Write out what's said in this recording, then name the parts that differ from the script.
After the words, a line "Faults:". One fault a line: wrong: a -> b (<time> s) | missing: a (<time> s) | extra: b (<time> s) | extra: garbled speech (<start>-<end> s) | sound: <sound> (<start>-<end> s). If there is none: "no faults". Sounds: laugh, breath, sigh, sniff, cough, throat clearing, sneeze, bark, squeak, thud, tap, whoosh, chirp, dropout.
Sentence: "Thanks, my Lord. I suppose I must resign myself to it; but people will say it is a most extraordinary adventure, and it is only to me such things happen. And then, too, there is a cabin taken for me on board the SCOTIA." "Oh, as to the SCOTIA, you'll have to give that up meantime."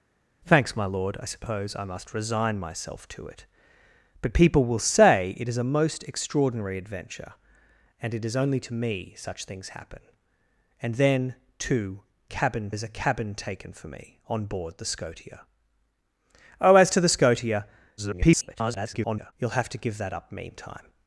"Thanks, my Lord. I suppose I must resign myself to it; but people will say it is a most extraordinary adventure, and it is only to me such things happen. And then, too, cabin is a cabin taken for me on board the SCOTIA." "Oh, as to the SCOTIA, [garbled] you'll have to give that up meantime."
Faults:
wrong: there -> cabin (12.3 s)
extra: garbled speech (18.0-19.3 s)